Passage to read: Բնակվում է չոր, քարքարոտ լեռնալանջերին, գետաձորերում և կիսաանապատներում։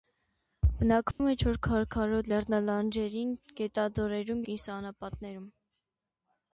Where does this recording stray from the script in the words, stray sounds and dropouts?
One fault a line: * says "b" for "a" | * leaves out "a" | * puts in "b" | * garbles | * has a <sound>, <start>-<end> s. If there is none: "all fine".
* has a dropout, 1.1-1.2 s
* leaves out "և"